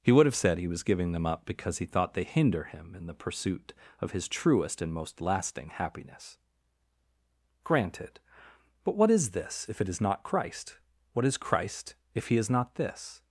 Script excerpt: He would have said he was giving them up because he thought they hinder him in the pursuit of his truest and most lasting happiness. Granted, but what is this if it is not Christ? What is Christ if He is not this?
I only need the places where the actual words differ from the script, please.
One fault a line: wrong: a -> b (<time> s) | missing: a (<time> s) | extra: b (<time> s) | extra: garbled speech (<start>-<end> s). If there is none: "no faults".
no faults